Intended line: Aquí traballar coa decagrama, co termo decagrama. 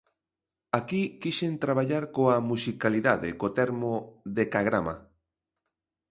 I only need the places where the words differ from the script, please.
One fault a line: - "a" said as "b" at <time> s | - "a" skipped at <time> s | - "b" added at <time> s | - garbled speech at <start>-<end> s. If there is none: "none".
- "quixen" added at 1.2 s
- "decagrama" said as "musicalidade" at 2.5 s